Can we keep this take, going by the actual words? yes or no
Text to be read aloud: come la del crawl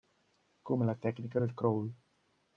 no